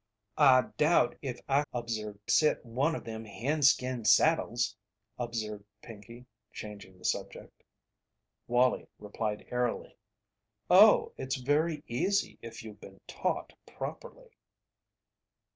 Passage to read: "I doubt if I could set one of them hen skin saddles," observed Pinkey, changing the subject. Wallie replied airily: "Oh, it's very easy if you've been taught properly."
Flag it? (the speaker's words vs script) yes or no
yes